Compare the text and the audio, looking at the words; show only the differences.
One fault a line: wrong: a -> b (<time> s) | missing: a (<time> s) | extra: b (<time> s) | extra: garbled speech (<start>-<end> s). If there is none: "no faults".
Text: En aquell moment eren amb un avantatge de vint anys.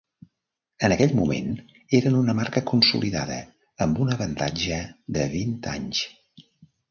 extra: una marca consolidada (2.2 s)